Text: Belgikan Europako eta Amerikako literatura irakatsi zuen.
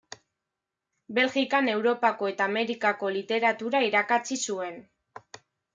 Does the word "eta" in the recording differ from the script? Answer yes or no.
no